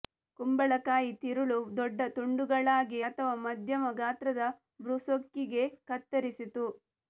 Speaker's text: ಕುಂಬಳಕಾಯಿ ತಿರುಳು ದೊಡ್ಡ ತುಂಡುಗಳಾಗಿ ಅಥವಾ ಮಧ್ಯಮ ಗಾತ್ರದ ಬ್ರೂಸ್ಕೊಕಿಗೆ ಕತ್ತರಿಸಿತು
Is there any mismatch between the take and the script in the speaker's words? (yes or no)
no